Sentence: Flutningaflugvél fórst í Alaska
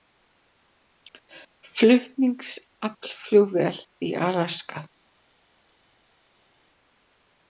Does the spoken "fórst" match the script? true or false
false